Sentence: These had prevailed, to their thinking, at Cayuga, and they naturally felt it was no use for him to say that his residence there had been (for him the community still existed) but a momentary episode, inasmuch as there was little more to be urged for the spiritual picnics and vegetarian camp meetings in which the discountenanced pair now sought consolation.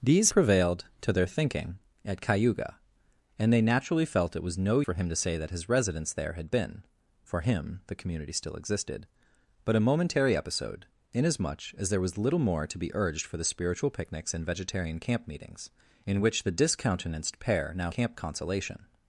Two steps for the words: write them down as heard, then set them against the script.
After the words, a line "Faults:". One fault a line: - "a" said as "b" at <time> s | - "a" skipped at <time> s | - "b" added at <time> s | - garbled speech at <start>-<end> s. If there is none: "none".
These prevailed, to their thinking, at Cayuga, and they naturally felt it was no for him to say that his residence there had been (for him the community still existed) but a momentary episode, inasmuch as there was little more to be urged for the spiritual picnics and vegetarian camp meetings in which the discountenanced pair now camp consolation.
Faults:
- "had" skipped at 0.3 s
- "use" skipped at 4.8 s
- "sought" said as "camp" at 17.9 s